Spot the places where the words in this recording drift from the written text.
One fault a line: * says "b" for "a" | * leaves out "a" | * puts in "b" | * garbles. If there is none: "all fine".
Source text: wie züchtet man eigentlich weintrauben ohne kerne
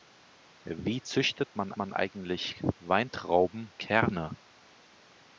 * puts in "man"
* leaves out "ohne"